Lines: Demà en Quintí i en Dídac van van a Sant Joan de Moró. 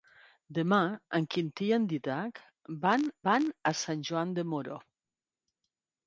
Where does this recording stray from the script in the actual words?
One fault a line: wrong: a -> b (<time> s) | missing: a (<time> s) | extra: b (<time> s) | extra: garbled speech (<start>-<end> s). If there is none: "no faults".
no faults